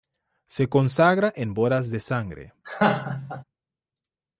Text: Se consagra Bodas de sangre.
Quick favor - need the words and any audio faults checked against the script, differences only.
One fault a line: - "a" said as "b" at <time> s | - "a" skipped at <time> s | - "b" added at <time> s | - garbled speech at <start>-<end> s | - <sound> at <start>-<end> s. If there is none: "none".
- "en" added at 1.4 s
- laugh at 2.6-3.4 s